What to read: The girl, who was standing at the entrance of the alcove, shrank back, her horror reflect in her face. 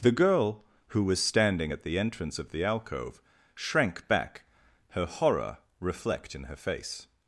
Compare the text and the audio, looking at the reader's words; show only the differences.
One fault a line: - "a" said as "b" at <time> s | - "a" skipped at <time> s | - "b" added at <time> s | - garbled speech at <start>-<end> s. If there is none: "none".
none